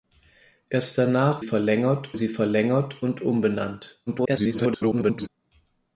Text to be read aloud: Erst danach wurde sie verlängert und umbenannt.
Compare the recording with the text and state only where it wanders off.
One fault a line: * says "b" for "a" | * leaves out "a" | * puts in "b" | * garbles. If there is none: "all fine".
* says "verlängert" for "wurde"
* garbles